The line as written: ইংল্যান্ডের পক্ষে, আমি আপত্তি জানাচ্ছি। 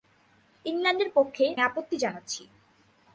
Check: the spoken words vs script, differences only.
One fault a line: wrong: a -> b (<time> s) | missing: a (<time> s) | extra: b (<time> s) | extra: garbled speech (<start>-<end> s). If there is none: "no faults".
missing: আমি (1.4 s)